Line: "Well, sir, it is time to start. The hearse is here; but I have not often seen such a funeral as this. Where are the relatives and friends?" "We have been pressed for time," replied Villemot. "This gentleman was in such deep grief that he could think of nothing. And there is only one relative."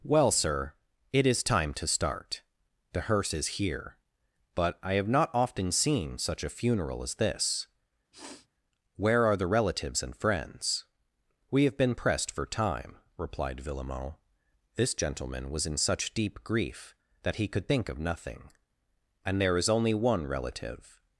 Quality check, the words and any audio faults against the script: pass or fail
fail